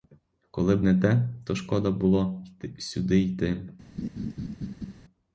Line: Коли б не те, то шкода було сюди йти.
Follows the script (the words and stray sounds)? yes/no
no